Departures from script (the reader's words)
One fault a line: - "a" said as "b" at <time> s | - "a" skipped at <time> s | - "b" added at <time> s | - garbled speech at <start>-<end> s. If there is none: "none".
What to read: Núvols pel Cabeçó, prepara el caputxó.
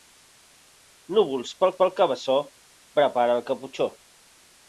- "pel" added at 1.8 s